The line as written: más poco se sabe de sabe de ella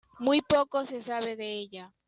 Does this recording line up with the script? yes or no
no